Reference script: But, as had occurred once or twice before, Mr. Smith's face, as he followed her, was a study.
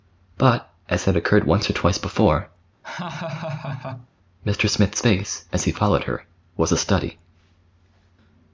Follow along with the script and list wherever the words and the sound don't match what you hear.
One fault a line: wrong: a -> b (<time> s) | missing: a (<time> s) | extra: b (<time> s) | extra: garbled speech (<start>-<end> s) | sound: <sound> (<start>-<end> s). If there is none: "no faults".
sound: laugh (2.8-4.1 s)